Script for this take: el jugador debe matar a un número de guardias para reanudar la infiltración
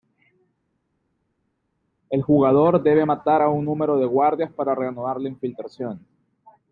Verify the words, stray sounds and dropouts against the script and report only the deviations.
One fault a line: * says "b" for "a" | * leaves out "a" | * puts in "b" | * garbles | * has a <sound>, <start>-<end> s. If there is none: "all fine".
all fine